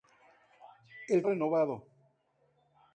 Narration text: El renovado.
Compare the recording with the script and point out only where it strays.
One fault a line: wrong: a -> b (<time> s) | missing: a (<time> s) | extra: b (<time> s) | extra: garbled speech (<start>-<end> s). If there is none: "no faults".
no faults